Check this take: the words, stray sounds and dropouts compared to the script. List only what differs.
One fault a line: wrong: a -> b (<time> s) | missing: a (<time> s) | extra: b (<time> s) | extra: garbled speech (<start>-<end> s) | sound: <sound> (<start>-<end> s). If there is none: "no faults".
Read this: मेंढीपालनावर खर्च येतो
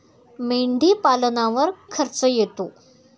no faults